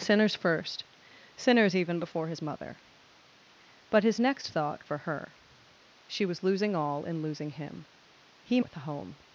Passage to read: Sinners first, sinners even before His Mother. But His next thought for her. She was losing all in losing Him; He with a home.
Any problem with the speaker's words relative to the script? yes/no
no